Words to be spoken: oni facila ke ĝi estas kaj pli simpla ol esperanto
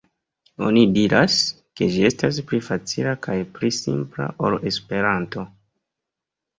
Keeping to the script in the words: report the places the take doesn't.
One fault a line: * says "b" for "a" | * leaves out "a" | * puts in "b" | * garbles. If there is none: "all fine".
* says "diras" for "facila"
* puts in "pli facila"